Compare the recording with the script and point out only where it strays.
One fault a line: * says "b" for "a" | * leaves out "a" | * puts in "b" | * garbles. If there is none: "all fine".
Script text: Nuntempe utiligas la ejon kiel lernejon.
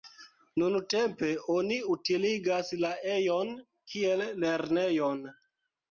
* puts in "oni"